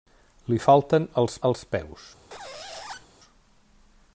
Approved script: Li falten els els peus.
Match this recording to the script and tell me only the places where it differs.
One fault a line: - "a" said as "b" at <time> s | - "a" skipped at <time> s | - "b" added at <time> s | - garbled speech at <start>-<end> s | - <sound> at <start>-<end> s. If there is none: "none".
- squeak at 2.3-3.1 s